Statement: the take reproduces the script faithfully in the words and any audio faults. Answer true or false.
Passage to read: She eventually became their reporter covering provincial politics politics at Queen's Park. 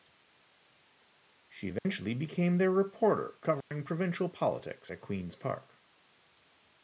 false